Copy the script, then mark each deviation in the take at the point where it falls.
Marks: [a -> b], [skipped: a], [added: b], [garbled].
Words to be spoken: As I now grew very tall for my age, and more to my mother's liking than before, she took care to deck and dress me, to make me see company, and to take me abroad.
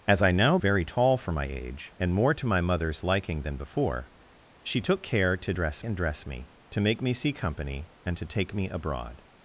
As I now [skipped: grew] very tall for my age, and more to my mother's liking than before, she took care to [deck -> dress] and dress me, to make me see company, and to take me abroad.